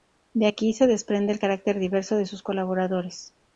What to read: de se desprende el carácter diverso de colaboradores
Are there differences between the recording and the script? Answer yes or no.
yes